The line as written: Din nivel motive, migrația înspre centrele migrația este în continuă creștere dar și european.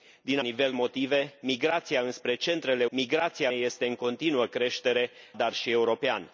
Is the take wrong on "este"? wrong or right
right